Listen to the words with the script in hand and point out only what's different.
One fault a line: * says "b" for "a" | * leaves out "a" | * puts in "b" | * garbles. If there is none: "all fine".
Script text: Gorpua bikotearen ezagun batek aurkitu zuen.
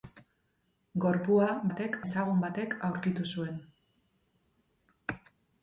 * says "batek" for "bikotearen"